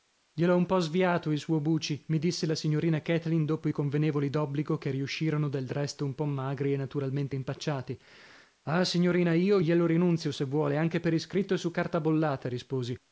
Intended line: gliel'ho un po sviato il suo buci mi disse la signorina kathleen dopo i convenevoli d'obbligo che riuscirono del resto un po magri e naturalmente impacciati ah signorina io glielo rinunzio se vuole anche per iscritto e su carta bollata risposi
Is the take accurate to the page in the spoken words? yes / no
yes